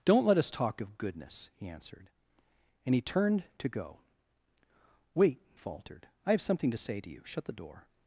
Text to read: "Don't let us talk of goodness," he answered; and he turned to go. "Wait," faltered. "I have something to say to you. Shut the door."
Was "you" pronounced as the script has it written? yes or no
yes